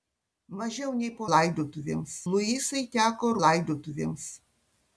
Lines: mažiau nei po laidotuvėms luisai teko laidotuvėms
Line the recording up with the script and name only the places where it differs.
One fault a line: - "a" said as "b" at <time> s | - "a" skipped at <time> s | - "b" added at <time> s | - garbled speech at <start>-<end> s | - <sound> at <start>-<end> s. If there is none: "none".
none